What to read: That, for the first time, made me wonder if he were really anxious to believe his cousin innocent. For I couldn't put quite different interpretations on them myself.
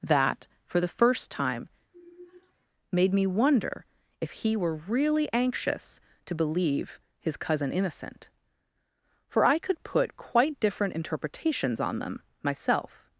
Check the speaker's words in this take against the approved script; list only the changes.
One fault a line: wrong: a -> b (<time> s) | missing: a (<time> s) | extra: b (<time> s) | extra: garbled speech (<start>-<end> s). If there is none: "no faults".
wrong: couldn't -> could (9.6 s)